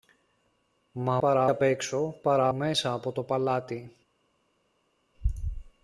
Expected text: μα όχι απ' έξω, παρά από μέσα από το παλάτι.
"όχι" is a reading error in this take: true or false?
true